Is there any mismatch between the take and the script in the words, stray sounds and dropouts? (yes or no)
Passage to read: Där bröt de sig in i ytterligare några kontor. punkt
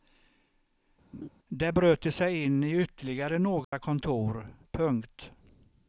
yes